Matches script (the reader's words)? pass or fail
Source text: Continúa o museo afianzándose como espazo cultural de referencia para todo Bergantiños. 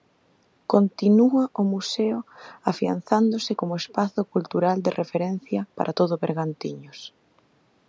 pass